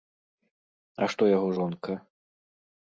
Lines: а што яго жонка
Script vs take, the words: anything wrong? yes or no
no